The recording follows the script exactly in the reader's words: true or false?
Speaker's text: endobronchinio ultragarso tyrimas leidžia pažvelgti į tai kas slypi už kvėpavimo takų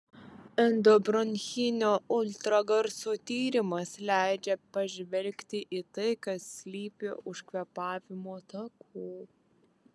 true